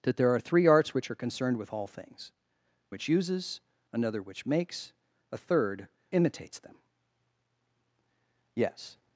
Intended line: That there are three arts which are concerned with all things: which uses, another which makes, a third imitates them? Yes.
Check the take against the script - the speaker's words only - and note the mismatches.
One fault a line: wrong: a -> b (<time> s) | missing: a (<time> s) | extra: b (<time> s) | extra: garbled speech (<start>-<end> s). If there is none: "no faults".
no faults